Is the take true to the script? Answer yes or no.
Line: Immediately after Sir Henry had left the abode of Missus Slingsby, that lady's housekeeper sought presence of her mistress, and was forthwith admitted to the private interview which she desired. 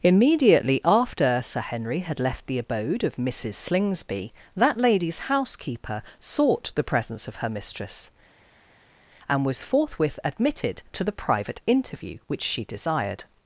no